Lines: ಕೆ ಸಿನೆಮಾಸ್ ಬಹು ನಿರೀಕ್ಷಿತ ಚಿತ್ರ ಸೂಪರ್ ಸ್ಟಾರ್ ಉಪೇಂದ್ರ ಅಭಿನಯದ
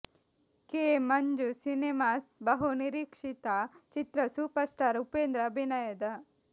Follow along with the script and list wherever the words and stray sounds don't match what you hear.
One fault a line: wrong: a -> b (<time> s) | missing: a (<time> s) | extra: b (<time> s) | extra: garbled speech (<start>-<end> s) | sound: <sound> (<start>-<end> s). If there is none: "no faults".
extra: ಮಂಜು (1.0 s)